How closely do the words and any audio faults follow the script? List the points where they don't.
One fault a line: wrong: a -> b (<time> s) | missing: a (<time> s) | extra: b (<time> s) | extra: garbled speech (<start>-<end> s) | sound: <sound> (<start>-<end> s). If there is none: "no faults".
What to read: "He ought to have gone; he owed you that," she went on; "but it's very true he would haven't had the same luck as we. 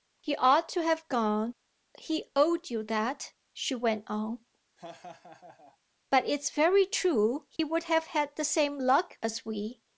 sound: laugh (4.8-5.8 s)
sound: dropout (7.6-7.6 s)
wrong: haven't -> have (7.8 s)